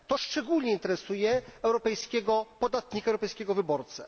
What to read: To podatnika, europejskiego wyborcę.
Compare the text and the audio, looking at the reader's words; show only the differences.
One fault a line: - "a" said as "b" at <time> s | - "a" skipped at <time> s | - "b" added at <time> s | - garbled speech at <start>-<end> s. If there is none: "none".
- "szczególnie interesuje europejskiego" added at 0.2 s